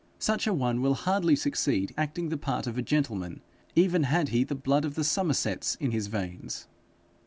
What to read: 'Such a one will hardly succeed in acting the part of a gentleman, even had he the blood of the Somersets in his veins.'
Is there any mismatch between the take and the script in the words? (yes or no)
yes